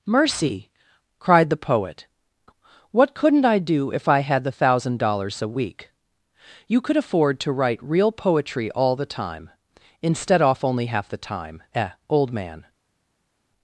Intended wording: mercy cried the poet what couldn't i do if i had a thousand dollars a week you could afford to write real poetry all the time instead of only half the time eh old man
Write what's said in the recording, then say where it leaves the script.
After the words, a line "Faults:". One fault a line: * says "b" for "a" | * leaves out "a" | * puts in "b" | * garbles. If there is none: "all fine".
mercy cried the poet what couldn't i do if i had the thousand dollars a week you could afford to write real poetry all the time instead off only half the time eh old man
Faults:
* says "the" for "a"
* says "off" for "of"